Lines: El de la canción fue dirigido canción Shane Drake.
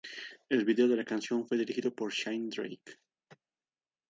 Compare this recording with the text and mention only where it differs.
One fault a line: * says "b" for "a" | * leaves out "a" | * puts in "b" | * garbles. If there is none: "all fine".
* puts in "video"
* says "por" for "canción"